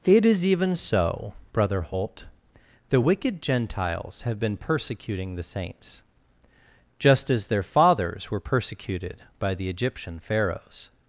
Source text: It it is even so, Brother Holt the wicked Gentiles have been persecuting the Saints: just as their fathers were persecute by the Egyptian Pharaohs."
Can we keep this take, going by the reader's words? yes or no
no